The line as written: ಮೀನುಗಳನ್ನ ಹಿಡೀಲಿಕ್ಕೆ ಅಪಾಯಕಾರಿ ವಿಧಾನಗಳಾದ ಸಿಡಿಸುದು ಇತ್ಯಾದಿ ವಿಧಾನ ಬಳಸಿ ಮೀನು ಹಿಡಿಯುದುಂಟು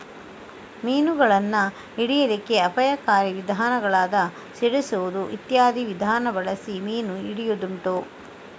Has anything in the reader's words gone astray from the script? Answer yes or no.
no